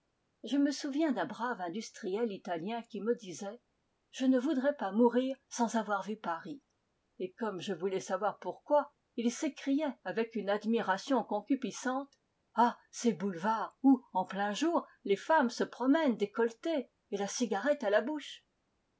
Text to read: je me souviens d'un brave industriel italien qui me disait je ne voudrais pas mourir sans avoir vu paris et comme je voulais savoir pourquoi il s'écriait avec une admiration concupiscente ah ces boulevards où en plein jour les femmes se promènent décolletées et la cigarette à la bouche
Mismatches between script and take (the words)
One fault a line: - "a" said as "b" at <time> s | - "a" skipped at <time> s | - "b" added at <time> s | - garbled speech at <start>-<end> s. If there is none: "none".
none